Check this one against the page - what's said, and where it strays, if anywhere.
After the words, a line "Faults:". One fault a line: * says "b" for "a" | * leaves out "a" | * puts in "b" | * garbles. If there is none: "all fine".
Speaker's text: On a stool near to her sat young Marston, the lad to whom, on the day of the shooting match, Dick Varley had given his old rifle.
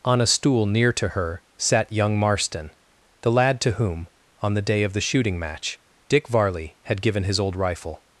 On a stool near to her sat young Marston, the lad to whom, on the day of the shooting match, Dick Varley had given his old rifle.
Faults:
all fine